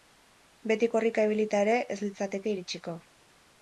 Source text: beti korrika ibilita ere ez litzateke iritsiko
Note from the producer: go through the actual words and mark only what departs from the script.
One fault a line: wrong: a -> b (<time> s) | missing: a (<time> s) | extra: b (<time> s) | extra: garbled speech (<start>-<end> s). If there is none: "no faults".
no faults